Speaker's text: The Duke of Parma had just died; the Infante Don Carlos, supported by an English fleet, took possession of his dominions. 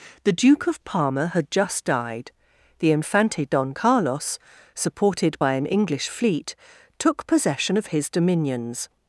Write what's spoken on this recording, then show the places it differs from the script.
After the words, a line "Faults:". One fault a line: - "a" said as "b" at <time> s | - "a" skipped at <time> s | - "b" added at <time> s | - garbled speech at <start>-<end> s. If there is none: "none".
The Duke of Parma had just died; the Infante Don Carlos, supported by an English fleet, took possession of his dominions.
Faults:
none